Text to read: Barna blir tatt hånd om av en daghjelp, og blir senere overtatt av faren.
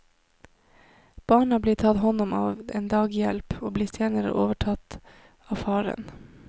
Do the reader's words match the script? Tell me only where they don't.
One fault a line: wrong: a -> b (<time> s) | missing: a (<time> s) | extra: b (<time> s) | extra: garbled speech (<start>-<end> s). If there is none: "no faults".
no faults